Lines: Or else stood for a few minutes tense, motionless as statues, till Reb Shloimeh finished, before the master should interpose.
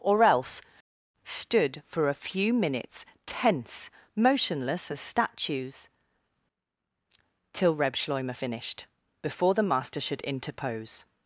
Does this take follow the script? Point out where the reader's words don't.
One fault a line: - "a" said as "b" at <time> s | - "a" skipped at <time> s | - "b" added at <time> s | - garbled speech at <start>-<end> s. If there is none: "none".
none